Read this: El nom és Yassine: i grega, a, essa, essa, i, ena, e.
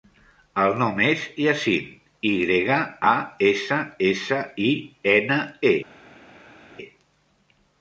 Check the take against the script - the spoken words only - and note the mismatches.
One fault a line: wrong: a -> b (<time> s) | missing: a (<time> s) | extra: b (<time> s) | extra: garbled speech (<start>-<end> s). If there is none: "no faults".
no faults